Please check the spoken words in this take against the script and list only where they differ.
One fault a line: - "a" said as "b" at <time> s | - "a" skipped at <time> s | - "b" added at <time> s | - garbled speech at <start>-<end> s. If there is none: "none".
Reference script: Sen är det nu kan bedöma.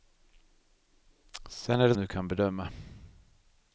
none